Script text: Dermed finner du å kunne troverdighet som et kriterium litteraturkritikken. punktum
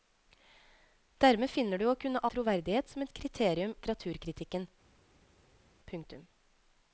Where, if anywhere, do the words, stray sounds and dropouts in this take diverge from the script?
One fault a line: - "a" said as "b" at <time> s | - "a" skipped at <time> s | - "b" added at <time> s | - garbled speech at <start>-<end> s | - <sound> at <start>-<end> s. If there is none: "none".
none